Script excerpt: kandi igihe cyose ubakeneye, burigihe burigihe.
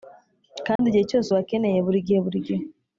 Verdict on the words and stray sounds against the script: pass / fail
fail